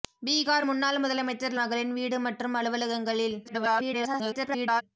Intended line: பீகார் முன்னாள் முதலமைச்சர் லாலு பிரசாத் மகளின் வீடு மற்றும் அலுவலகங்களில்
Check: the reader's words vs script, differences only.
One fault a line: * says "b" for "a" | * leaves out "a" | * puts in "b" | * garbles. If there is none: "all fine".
* leaves out "லாலு பிரசாத்"
* garbles